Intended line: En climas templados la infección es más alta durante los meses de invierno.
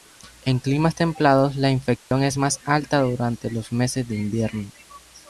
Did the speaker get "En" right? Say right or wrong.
right